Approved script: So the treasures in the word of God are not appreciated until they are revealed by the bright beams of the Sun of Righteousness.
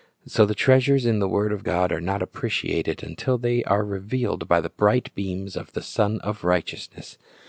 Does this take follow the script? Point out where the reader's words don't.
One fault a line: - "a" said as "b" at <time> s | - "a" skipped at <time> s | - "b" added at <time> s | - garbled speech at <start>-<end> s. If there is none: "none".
none